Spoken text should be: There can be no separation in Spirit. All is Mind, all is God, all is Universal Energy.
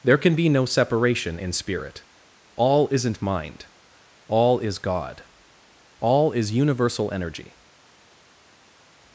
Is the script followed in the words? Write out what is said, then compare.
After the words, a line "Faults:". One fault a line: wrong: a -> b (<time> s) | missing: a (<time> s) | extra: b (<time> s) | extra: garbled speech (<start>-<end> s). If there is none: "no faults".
There can be no separation in Spirit. All isn't Mind, all is God, all is Universal Energy.
Faults:
wrong: is -> isn't (2.9 s)